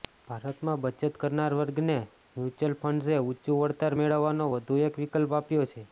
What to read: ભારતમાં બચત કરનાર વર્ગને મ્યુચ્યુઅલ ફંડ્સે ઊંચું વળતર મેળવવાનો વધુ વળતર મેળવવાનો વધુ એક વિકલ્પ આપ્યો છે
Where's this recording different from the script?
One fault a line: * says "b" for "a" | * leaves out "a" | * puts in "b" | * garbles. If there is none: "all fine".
* leaves out "વળતર મેળવવાનો વધુ"